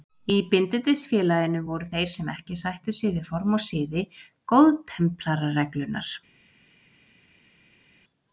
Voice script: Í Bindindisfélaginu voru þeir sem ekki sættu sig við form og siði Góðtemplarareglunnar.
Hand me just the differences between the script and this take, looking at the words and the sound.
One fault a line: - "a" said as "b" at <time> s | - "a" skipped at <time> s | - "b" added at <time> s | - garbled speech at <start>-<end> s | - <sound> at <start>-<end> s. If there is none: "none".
none